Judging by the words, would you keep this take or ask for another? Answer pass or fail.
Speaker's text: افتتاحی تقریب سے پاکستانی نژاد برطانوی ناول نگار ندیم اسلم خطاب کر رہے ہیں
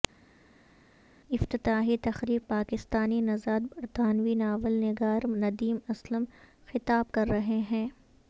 fail